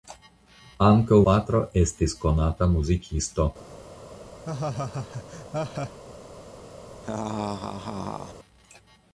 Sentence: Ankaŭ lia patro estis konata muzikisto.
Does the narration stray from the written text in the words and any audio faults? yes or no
yes